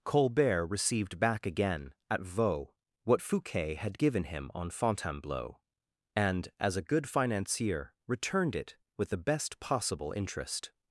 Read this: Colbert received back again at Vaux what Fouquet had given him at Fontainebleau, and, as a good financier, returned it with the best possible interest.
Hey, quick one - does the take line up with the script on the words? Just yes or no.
no